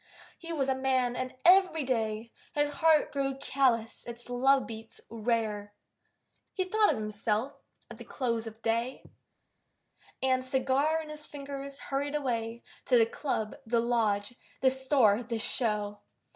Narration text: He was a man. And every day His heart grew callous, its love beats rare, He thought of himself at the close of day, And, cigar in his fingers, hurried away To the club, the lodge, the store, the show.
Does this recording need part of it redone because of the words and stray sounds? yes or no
no